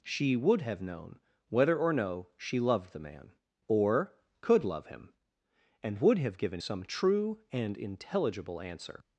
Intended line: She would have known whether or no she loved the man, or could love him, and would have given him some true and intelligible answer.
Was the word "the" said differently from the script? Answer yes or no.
no